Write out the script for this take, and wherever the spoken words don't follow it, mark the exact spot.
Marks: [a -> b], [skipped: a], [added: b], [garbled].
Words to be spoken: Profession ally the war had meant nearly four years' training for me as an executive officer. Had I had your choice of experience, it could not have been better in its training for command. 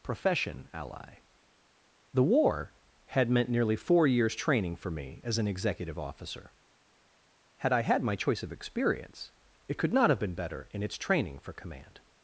Profession ally the war had meant nearly four years' training for me as an executive officer. Had I had [your -> my] choice of experience, it could not have been better in its training for command.